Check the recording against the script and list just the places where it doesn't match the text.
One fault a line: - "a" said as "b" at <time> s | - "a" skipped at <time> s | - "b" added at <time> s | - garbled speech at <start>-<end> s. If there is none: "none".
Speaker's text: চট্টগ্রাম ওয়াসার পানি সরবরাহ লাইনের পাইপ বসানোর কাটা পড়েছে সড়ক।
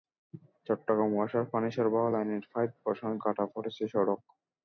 none